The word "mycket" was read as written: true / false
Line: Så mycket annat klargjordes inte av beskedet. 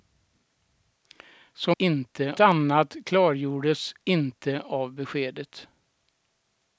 false